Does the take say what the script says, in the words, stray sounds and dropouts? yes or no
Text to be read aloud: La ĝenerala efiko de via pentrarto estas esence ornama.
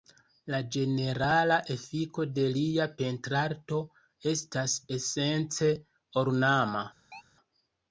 no